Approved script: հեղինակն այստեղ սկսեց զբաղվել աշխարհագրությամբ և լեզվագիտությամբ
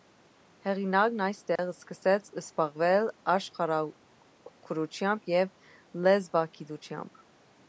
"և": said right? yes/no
yes